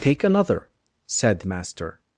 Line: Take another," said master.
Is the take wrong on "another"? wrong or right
right